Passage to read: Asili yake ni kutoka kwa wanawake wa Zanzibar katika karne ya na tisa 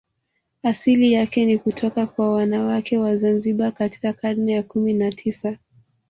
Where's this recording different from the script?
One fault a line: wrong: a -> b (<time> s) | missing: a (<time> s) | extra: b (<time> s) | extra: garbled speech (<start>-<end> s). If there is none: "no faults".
extra: kumi (4.6 s)